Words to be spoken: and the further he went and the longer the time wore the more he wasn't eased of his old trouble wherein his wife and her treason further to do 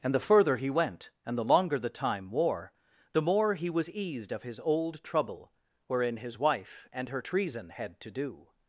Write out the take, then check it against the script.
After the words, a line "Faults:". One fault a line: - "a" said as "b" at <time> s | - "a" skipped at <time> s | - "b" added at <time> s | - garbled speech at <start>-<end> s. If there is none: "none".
and the further he went and the longer the time wore the more he was eased of his old trouble wherein his wife and her treason had to do
Faults:
- "wasn't" said as "was" at 3.7 s
- "further" said as "had" at 7.7 s